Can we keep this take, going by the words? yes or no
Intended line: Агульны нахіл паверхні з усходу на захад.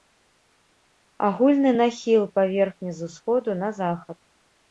yes